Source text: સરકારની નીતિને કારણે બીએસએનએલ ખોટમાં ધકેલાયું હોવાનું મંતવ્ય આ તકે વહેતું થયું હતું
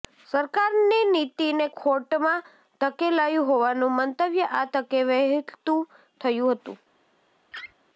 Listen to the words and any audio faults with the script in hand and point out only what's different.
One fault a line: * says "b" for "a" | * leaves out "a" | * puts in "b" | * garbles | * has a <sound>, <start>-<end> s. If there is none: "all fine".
* leaves out "કારણે બીએસએનએલ"
* has a laugh, 7.5-7.7 s